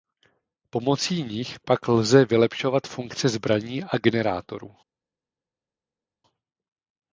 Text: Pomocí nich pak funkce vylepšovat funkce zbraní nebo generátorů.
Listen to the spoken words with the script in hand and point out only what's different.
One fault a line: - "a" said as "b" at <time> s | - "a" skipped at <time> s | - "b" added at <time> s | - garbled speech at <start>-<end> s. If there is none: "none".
- "funkce" said as "lze" at 1.9 s
- "nebo" said as "a" at 3.8 s